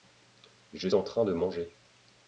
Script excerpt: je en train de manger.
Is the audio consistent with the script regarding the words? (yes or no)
yes